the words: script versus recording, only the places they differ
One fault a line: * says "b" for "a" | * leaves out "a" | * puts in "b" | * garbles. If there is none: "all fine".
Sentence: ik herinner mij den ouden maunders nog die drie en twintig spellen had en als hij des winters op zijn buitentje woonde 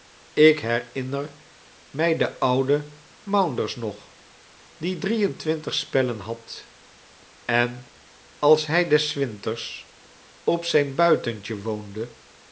all fine